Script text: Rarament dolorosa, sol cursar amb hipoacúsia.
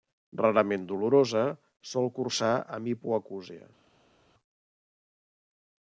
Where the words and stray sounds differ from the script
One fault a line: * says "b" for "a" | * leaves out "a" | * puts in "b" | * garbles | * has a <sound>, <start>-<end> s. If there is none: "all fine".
all fine